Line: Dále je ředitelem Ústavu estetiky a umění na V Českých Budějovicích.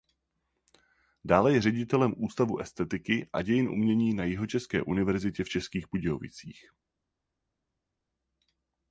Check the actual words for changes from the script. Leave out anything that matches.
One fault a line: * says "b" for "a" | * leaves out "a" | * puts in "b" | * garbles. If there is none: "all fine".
* puts in "dějin"
* puts in "Jihočeské univerzitě"